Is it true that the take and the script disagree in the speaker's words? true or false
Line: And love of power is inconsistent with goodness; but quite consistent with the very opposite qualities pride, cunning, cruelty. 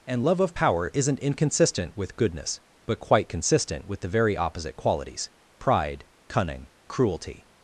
true